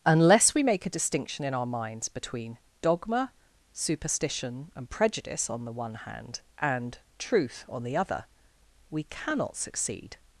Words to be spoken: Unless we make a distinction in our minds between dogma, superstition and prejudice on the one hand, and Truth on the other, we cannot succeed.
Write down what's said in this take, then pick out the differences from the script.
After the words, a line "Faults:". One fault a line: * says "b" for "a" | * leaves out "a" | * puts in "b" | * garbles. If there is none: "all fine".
Unless we make a distinction in our minds between dogma, superstition and prejudice on the one hand, and Truth on the other, we cannot succeed.
Faults:
all fine